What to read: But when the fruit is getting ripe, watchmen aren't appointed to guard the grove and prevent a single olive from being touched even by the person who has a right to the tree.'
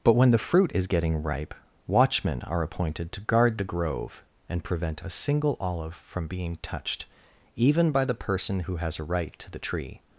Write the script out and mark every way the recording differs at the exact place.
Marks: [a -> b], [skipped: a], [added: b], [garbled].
But when the fruit is getting ripe, watchmen [aren't -> are] appointed to guard the grove and prevent a single olive from being touched even by the person who has a right to the tree.'